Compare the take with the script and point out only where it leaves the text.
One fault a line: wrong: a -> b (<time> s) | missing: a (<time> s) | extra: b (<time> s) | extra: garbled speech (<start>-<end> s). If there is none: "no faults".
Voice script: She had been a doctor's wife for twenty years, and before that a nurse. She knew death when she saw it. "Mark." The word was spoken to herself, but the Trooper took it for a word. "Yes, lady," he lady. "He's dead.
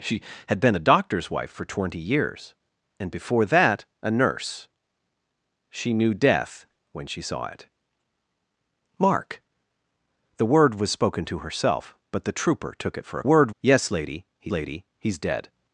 no faults